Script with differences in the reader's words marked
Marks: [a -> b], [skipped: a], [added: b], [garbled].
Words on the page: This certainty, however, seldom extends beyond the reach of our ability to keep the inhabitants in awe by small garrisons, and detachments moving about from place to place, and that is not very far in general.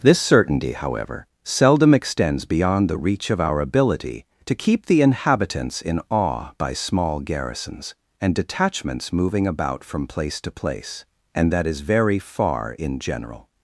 This certainty, however, seldom extends beyond the reach of our ability to keep the inhabitants in awe by small garrisons, and detachments moving about from place to place, and that is [skipped: not] very far in general.